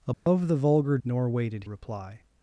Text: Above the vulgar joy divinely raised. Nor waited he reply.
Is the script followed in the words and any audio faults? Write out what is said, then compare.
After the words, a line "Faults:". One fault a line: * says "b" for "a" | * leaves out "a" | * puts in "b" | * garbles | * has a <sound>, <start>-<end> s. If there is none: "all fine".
Above the vulgar. Nor waited reply.
Faults:
* has a dropout, 0.1-0.3 s
* leaves out "joy divinely raised"
* leaves out "he"